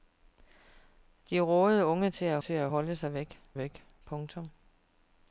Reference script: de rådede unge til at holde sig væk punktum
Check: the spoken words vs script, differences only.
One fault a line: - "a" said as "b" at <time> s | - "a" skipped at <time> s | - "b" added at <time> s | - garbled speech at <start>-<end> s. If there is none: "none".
- "til at" added at 2.4 s
- "væk" added at 3.6 s